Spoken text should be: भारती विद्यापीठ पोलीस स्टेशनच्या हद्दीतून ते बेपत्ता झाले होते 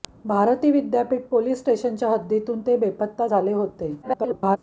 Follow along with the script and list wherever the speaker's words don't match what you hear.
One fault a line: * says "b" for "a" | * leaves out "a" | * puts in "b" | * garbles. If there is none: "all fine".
* garbles